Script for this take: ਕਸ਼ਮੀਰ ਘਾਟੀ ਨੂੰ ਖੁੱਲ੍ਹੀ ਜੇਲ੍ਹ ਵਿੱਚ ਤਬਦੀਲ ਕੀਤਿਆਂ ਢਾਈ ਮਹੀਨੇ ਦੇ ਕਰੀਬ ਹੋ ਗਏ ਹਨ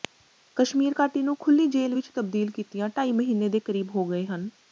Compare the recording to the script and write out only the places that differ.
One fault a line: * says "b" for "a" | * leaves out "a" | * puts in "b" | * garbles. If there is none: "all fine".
all fine